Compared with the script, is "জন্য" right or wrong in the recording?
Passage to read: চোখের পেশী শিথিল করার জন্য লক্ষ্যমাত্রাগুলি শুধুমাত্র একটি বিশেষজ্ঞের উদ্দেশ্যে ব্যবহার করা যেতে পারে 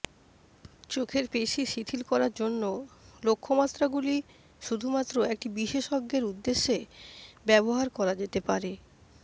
right